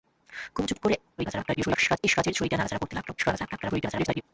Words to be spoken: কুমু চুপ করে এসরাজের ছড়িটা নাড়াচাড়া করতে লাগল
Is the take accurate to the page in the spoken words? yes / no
no